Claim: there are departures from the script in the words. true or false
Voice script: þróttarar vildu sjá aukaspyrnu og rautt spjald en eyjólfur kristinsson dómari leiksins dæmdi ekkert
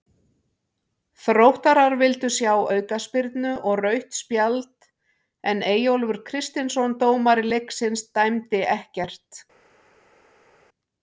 false